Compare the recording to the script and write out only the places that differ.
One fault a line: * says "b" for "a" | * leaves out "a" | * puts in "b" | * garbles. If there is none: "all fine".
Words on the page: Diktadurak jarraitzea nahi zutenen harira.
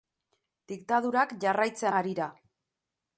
* leaves out "nahi zutenen"